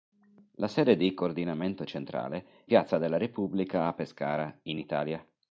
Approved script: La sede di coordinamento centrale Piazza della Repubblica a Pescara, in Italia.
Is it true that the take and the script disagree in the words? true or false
false